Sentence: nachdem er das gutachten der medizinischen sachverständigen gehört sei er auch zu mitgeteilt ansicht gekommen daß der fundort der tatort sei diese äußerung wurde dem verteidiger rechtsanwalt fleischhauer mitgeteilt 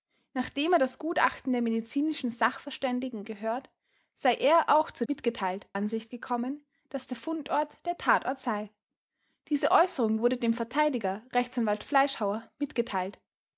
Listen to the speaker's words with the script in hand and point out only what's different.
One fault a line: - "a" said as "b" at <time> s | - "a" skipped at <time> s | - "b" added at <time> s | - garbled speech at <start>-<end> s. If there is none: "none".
none